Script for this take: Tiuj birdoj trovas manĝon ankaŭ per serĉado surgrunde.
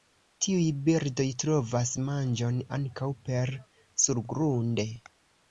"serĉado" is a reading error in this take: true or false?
true